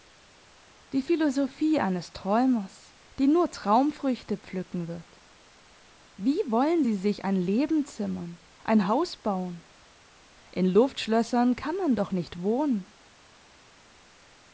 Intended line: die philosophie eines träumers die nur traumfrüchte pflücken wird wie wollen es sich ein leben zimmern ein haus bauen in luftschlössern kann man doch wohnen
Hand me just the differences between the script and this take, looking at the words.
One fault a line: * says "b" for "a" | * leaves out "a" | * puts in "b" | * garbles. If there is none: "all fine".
* says "sie" for "es"
* puts in "nicht"